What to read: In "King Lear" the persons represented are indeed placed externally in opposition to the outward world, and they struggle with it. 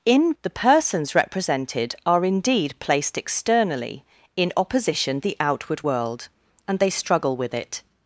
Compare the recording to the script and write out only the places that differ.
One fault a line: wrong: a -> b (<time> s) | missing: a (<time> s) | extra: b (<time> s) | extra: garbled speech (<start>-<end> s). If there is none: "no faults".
missing: King Lear (0.3 s)
missing: to (5.2 s)